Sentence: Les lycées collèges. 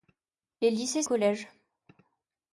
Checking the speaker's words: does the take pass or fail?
pass